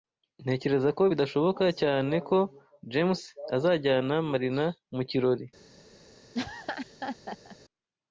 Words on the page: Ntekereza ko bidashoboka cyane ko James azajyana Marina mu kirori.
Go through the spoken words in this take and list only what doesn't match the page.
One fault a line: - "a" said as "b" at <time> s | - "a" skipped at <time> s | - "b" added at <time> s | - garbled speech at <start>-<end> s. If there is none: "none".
none